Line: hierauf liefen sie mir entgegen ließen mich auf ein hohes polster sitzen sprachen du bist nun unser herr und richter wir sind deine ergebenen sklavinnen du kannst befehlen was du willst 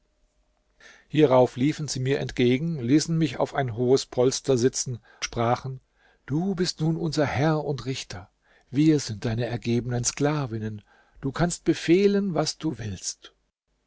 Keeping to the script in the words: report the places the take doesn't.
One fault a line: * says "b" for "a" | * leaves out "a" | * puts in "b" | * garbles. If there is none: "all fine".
all fine